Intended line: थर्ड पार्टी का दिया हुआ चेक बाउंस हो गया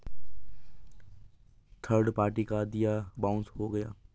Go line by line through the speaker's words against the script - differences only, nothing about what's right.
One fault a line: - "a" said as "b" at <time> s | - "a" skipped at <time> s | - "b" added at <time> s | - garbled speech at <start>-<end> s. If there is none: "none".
- "हुआ चेक" skipped at 3.0 s